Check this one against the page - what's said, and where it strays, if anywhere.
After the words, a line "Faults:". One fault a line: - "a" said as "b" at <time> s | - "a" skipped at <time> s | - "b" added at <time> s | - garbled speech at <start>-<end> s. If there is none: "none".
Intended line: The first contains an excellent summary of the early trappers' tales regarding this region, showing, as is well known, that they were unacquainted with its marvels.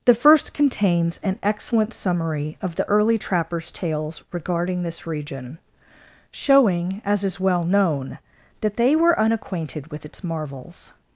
The first contains an excellent summary of the early trappers' tales regarding this region, showing, as is well known, that they were unacquainted with its marvels.
Faults:
none